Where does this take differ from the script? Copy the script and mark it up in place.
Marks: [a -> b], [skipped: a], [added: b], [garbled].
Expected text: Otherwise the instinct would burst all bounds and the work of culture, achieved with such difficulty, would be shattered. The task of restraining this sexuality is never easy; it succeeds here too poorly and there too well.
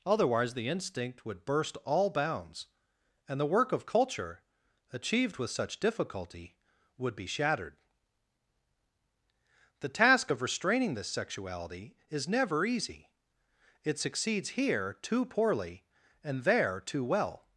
Otherwise the instinct would burst all bounds and the work of culture, achieved with such difficulty, would be shattered. The task of restraining this sexuality is never easy; it succeeds here too poorly and there too well.